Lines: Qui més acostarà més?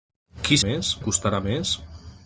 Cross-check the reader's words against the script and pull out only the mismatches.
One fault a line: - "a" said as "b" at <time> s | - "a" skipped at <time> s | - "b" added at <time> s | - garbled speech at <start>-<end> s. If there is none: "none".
none